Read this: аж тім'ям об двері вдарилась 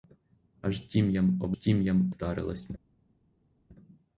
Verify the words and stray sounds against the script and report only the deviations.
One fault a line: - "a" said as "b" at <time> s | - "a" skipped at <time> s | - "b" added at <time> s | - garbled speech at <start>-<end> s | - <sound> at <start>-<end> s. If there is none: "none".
- "двері" said as "тім'ям" at 1.5 s